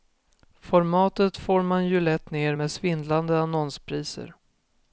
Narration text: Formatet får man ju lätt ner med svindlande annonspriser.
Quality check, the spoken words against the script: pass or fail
pass